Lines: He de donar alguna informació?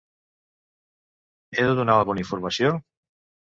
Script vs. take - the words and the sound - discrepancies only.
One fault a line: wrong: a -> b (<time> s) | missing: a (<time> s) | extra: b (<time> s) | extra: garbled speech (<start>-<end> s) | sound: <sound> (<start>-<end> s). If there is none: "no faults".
no faults